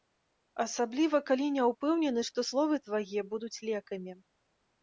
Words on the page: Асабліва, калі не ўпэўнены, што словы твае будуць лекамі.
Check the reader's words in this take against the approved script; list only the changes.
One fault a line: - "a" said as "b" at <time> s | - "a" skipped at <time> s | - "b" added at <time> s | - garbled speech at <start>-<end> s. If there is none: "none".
none